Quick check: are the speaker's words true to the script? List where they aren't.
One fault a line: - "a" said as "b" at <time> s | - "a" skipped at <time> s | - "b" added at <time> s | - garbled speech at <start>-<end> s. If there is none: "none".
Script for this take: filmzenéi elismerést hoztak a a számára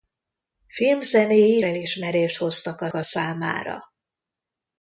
none